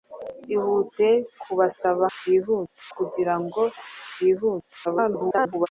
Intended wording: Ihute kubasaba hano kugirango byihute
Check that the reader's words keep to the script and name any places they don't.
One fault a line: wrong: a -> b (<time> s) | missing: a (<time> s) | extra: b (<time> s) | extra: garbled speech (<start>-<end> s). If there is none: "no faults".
wrong: hano -> byihute (2.2 s)
extra: garbled speech (4.8-5.7 s)